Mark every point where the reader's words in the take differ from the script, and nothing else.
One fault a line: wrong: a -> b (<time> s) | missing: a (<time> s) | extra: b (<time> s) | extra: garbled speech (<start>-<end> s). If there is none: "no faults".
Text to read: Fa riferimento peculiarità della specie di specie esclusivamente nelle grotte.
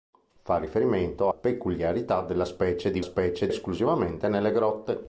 no faults